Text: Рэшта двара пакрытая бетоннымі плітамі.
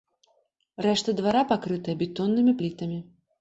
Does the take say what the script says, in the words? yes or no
yes